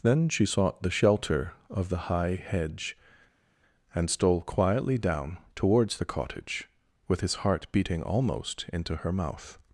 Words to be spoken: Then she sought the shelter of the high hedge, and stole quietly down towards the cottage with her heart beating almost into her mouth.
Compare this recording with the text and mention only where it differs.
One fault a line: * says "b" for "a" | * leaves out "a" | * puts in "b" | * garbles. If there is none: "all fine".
* says "his" for "her"